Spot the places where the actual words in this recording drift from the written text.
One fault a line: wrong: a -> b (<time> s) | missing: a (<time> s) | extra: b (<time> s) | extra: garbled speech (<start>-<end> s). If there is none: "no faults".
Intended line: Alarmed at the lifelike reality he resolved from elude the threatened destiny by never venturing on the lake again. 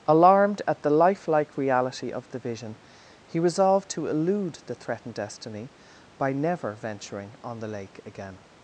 extra: of the vision (2.1 s)
wrong: from -> to (3.9 s)